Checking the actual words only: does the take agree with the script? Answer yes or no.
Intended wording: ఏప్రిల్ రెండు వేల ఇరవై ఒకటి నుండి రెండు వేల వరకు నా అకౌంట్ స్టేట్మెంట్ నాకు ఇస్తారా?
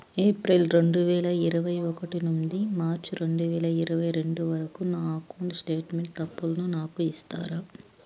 no